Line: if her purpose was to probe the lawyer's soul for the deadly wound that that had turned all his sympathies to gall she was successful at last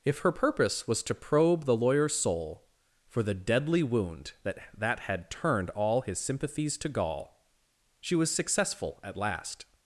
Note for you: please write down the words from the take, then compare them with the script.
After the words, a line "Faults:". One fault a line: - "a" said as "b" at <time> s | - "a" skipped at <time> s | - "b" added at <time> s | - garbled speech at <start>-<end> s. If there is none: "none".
if her purpose was to probe the lawyer's soul for the deadly wound that that had turned all his sympathies to gall she was successful at last
Faults:
none